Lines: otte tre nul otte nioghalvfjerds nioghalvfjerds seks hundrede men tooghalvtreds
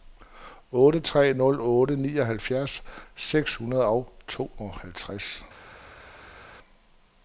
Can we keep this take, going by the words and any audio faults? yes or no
no